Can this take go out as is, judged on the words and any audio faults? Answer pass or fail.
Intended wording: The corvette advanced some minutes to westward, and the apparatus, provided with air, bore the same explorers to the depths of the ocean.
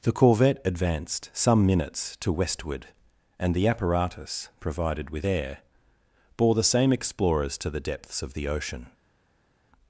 pass